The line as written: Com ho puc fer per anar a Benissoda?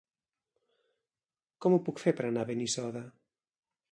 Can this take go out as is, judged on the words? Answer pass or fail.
pass